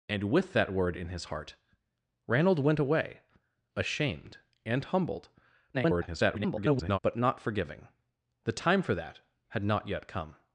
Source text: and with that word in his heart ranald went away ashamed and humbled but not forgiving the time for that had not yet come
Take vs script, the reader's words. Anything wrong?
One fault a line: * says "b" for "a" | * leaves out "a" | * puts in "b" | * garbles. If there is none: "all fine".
* garbles